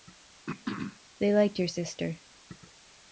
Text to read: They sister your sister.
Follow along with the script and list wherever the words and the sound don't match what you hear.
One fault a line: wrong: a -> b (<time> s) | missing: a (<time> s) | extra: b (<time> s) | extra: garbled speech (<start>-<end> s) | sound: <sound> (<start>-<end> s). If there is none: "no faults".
sound: throat clearing (0.5-1.0 s)
wrong: sister -> liked (1.3 s)